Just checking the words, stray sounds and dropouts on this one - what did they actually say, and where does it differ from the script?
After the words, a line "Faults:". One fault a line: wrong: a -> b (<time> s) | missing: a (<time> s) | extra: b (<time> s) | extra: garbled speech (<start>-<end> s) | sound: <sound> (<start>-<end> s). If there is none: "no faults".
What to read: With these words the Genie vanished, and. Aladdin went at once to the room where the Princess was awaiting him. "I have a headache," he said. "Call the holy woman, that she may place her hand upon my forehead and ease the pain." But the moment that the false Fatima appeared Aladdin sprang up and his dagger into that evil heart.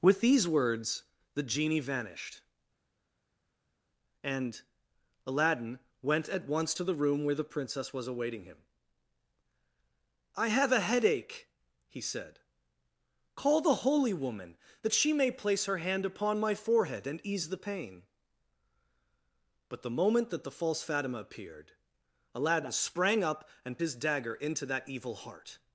With these words the Genie vanished, and. Aladdin went at once to the room where the Princess was awaiting him. "I have a headache," he said. "Call the holy woman, that she may place her hand upon my forehead and ease the pain." But the moment that the false Fatima appeared Aladdin sprang up and his dagger into that evil heart.
Faults:
no faults